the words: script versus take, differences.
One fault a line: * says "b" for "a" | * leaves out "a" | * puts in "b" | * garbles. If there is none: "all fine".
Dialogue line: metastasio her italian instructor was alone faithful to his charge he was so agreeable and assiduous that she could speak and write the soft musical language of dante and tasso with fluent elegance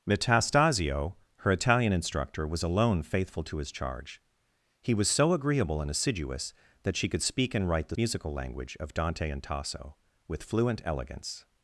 * leaves out "soft"